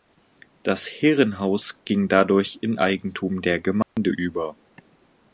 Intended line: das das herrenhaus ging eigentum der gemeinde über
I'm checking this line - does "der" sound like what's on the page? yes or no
yes